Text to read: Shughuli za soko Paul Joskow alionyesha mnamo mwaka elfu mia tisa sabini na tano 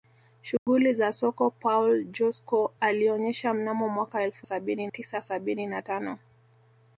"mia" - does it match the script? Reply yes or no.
no